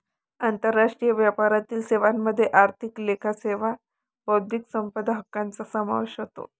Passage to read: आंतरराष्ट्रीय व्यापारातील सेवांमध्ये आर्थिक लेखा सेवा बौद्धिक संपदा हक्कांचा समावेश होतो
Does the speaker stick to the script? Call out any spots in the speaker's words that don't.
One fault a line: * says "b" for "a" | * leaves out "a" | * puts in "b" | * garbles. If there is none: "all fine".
all fine